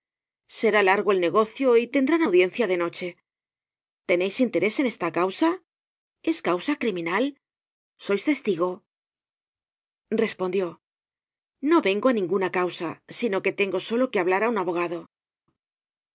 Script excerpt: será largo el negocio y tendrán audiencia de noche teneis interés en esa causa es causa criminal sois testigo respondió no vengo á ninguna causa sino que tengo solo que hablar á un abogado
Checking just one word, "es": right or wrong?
right